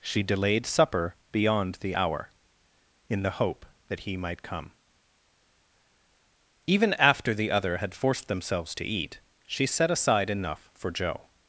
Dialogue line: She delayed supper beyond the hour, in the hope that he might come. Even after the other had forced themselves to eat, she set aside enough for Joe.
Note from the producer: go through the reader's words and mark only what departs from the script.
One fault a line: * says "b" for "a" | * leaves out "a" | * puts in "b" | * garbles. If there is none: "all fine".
all fine